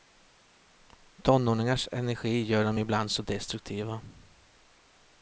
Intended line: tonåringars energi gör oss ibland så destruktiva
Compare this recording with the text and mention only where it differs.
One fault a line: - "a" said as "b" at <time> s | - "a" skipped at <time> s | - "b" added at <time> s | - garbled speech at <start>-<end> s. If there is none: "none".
- "oss" said as "dem" at 2.6 s